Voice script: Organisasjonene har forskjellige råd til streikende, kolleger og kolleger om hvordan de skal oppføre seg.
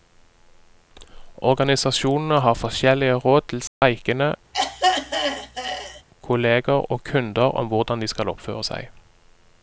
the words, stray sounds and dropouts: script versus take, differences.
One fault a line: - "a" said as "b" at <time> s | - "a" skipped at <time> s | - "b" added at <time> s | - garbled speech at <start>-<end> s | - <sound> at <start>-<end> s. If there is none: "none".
- dropout at 3.7-3.8 s
- throat clearing at 4.5-6.0 s
- "kolleger" said as "kunder" at 7.0 s